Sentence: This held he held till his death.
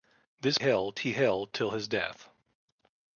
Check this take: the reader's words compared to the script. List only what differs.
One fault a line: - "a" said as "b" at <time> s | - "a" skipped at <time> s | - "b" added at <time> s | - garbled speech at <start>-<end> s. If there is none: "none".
none